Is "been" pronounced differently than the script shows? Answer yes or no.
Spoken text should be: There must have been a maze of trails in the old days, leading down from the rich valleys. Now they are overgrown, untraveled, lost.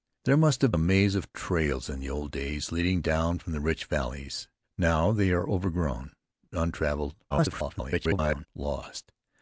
yes